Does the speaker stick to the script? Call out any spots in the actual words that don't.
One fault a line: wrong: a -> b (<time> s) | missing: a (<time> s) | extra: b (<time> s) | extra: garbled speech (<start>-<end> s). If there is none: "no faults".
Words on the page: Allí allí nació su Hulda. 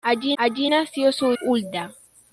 no faults